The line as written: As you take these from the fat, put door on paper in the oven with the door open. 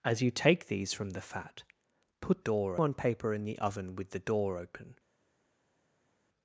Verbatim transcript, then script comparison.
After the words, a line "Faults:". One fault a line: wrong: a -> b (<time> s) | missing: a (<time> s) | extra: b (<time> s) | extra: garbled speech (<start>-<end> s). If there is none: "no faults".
As you take these from the fat, put door on paper in the oven with the door open.
Faults:
no faults